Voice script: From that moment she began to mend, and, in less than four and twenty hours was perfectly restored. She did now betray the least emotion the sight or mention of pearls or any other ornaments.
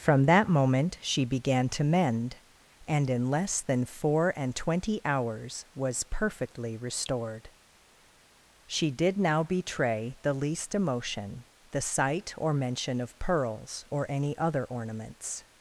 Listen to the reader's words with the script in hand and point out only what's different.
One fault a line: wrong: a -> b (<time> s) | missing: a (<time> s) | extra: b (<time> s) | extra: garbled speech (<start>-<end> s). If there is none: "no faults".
no faults